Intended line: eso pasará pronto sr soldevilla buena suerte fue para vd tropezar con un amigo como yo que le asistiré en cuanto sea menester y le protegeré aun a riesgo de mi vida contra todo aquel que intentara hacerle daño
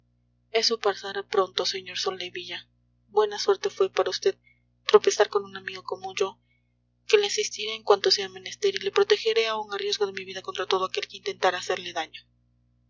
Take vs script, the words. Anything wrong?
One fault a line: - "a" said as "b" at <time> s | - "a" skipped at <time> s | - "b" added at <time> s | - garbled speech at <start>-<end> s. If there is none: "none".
none